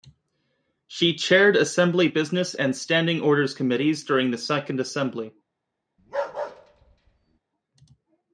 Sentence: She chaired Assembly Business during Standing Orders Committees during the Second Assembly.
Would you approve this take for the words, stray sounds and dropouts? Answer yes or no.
no